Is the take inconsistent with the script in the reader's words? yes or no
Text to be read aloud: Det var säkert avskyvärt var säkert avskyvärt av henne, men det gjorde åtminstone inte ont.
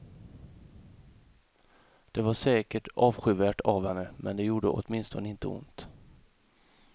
yes